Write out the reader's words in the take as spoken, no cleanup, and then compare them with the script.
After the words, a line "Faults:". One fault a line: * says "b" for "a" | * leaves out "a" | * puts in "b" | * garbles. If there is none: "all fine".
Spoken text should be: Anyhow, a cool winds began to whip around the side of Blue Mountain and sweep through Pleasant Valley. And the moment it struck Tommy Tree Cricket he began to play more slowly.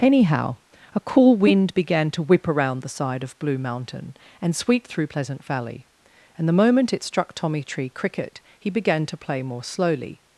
Anyhow, a cool wind began to whip around the side of Blue Mountain and sweep through Pleasant Valley. And the moment it struck Tommy Tree Cricket he began to play more slowly.
Faults:
* says "wind" for "winds"